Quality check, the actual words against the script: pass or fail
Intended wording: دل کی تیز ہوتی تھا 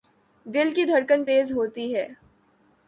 fail